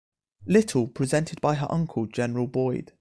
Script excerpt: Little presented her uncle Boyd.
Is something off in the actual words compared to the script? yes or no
yes